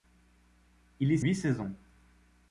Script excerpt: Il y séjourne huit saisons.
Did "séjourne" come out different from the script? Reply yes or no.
yes